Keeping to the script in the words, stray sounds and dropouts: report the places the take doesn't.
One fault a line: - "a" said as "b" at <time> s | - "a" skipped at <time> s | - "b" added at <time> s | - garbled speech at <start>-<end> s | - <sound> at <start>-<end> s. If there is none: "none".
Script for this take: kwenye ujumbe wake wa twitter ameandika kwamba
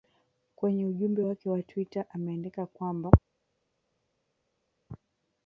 none